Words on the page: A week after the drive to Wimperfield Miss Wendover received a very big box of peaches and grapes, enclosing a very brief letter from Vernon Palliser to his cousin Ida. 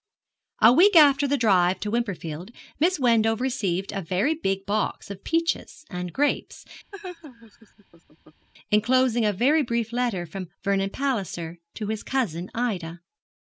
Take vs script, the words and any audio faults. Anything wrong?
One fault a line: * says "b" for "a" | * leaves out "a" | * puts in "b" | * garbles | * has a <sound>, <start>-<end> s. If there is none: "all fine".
* has a laugh, 6.9-8.5 s